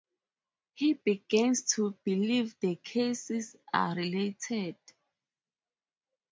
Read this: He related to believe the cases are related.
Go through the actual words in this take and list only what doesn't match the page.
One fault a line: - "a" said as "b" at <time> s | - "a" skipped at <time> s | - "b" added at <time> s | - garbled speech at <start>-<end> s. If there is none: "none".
- "related" said as "begins" at 0.9 s